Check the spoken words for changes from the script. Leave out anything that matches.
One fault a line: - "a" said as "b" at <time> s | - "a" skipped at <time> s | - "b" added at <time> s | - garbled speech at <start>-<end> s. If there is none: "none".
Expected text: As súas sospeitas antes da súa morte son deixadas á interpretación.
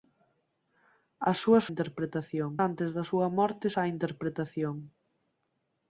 - "sospeitas" said as "interpretación" at 1.7 s
- "son deixadas" skipped at 3.7 s